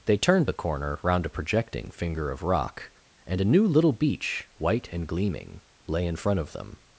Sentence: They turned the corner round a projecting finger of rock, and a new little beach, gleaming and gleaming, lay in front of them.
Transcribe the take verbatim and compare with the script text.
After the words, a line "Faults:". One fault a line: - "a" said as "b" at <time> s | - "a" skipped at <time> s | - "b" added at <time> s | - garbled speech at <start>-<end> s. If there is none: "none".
They turned the corner round a projecting finger of rock, and a new little beach, white and gleaming, lay in front of them.
Faults:
- "gleaming" said as "white" at 4.6 s